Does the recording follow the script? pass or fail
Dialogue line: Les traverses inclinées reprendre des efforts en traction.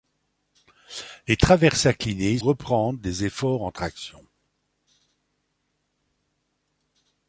pass